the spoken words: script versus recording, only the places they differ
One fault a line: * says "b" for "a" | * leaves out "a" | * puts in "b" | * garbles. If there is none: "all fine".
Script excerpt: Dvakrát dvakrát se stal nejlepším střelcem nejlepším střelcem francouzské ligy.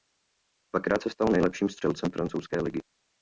* leaves out "dvakrát"
* leaves out "nejlepším střelcem"